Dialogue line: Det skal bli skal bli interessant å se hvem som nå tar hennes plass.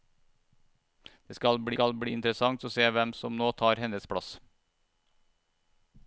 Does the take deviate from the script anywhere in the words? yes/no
no